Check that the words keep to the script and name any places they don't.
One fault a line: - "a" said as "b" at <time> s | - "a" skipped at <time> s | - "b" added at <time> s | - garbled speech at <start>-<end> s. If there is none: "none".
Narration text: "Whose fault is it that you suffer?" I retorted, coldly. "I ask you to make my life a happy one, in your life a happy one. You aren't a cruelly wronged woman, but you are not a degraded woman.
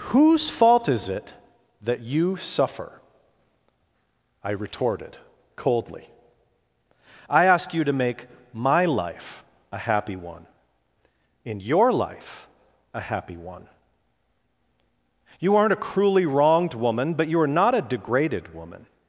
none